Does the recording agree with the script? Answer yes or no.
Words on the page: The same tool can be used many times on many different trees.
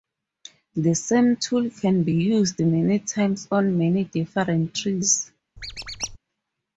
yes